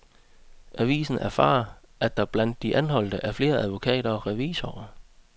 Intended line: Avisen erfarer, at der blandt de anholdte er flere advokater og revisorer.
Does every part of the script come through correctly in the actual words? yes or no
yes